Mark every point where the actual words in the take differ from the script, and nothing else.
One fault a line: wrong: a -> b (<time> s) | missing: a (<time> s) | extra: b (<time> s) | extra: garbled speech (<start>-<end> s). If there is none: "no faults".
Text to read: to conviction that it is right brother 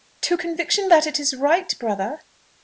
no faults